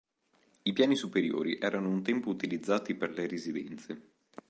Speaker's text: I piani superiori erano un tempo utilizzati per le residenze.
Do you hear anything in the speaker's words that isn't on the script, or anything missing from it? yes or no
no